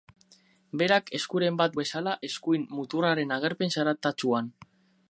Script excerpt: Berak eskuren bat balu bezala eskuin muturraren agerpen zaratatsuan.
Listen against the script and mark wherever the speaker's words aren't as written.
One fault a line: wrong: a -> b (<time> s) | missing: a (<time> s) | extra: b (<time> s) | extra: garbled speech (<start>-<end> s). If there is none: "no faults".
missing: balu (1.8 s)